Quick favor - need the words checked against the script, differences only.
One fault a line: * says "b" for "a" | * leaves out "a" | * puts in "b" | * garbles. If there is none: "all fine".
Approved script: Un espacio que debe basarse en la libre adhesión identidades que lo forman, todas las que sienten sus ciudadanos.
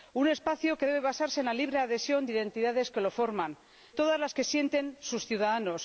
all fine